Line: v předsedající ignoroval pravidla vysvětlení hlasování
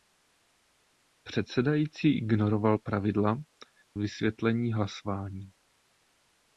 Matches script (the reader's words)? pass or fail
pass